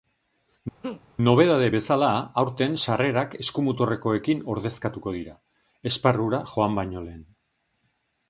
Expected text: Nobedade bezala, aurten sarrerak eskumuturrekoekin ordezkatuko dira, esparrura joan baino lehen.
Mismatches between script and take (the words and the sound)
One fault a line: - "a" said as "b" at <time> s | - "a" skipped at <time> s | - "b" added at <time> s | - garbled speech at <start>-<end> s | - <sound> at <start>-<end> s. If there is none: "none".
- laugh at 0.8-1.0 s